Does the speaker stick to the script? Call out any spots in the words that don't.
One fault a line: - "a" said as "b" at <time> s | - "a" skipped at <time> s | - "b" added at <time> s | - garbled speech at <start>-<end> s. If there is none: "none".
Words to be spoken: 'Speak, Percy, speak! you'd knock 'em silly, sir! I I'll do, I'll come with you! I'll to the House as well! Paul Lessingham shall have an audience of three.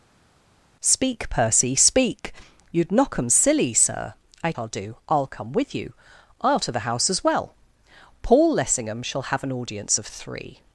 none